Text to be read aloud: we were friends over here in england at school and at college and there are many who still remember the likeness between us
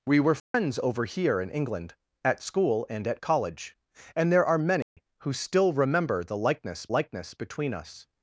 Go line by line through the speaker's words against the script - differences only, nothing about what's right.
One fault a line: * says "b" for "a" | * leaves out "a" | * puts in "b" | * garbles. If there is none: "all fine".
* puts in "likeness"